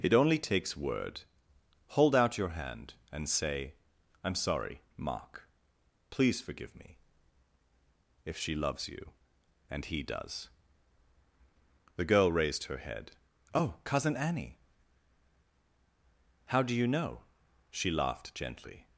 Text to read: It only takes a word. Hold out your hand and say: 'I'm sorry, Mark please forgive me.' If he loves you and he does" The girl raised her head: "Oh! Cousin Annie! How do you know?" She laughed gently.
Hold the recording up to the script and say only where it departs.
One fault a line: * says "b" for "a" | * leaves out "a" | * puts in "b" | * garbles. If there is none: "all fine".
* leaves out "a"
* says "she" for "he"